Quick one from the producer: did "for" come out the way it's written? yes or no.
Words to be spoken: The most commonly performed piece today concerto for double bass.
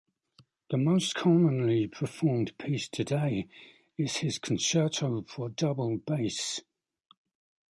yes